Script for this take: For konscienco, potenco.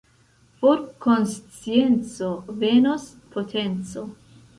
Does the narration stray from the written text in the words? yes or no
yes